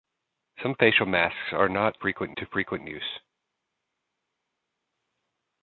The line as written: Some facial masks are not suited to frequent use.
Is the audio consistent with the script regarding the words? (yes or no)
no